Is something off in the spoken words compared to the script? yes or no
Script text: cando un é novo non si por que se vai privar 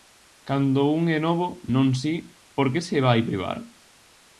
no